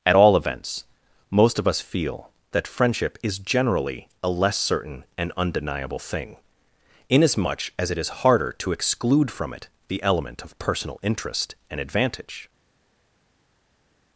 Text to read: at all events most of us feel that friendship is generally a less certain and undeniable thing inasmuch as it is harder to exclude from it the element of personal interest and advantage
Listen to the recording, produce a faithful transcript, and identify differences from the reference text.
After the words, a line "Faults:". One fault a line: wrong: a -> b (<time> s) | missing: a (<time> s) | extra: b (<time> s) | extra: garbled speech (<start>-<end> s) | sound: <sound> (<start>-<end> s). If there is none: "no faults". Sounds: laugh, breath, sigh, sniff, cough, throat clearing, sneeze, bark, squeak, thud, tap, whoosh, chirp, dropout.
at all events most of us feel that friendship is generally a less certain and undeniable thing inasmuch as it is harder to exclude from it the element of personal interest and advantage
Faults:
no faults